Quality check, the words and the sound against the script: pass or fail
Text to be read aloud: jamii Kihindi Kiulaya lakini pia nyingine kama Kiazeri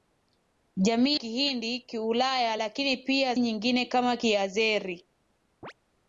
fail